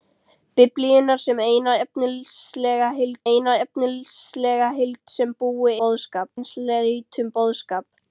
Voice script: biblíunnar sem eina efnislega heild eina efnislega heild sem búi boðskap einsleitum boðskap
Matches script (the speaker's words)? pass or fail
pass